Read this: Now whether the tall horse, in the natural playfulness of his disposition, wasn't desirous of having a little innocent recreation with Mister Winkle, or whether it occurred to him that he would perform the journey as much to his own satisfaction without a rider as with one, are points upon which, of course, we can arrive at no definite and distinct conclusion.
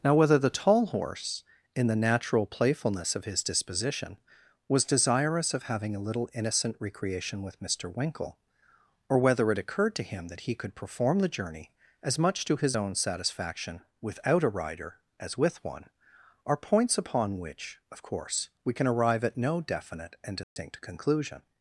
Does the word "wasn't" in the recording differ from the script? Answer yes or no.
yes